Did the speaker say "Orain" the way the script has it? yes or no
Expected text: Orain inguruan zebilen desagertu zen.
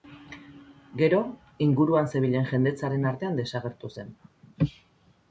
no